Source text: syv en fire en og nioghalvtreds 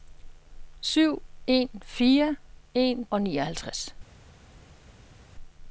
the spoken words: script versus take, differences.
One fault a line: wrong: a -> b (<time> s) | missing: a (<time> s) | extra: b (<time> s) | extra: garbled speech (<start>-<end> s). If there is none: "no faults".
no faults